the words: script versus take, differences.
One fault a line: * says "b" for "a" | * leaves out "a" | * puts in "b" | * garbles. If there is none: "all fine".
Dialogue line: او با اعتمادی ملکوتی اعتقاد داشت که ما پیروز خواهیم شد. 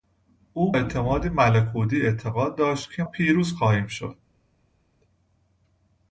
* leaves out "با"
* leaves out "ما"